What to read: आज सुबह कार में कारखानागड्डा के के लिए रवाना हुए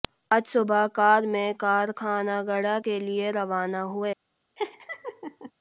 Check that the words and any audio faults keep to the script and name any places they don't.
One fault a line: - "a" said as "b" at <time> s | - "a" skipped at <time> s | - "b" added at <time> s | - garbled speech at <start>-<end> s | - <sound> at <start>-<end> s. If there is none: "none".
- "के" skipped at 3.0 s
- laugh at 4.6-5.5 s